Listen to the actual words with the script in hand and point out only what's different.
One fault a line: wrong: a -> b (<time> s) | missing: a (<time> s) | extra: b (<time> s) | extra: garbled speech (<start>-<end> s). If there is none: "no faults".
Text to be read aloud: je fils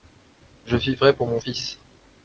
extra: vivrai pour mon (0.8 s)